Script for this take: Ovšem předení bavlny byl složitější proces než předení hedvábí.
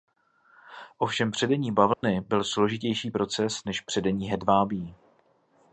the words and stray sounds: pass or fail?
fail